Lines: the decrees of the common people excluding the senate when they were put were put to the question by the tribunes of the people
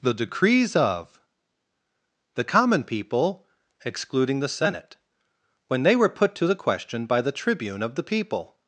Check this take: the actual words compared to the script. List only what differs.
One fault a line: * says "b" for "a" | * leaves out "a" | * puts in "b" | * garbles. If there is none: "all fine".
* leaves out "were put"
* says "tribune" for "tribunes"